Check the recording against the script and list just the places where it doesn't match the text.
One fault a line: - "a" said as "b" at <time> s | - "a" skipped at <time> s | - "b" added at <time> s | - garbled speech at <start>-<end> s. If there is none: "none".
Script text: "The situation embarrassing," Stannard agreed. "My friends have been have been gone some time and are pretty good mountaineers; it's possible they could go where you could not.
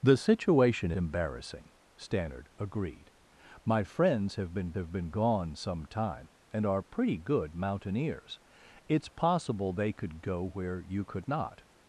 none